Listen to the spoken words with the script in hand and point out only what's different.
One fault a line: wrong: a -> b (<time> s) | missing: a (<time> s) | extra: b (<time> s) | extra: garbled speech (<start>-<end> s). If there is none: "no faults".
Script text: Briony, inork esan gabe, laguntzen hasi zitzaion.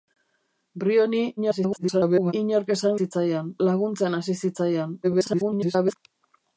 extra: garbled speech (1.4-2.3 s)
wrong: gabe -> zitzaion (3.0 s)
extra: garbled speech (5.0-6.0 s)